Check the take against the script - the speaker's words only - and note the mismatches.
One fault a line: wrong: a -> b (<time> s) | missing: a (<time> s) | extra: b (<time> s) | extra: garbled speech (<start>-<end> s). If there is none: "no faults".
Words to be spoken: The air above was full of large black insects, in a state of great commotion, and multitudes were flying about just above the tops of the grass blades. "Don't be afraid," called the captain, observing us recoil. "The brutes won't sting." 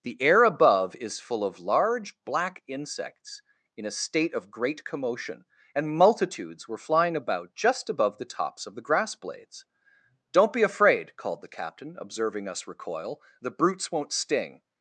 wrong: was -> is (0.9 s)